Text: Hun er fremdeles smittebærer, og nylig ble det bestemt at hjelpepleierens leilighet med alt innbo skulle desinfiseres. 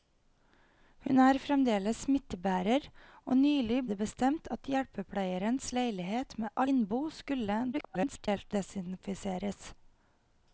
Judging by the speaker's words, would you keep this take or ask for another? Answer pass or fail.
fail